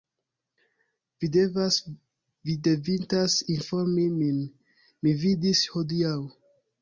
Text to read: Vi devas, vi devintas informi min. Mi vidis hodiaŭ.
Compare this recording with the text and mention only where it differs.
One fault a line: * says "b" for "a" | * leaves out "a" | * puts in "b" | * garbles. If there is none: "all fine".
all fine